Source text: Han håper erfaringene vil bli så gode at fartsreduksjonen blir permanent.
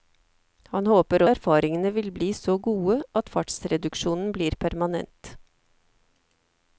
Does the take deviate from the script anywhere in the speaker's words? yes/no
no